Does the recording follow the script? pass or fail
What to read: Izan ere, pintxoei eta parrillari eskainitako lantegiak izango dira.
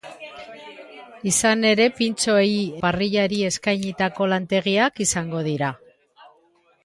fail